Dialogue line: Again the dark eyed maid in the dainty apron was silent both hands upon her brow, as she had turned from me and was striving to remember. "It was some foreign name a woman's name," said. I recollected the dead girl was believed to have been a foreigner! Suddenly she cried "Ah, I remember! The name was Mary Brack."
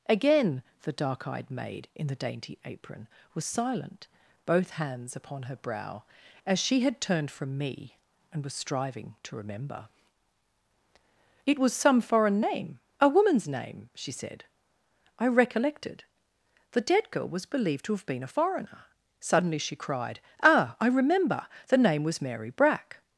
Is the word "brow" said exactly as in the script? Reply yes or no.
yes